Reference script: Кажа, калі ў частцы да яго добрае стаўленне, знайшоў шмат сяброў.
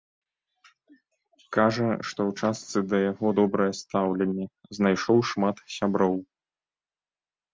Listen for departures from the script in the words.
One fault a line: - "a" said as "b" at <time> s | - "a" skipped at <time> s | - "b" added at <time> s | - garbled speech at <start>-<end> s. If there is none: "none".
- "калі" said as "што" at 2.1 s